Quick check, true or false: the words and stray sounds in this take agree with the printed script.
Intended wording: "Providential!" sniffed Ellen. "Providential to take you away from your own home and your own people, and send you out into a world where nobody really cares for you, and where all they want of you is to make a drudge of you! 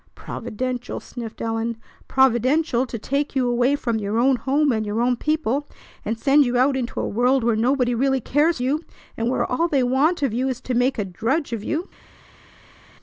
false